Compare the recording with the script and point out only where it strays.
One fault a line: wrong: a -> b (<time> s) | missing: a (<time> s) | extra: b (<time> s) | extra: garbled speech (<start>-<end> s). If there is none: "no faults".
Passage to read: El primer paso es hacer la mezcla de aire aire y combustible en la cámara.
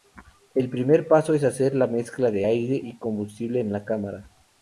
missing: aire (2.8 s)